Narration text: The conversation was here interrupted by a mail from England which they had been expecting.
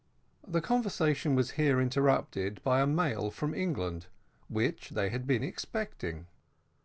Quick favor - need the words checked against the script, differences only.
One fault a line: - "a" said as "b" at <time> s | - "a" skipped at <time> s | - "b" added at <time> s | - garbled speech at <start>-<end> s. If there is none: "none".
none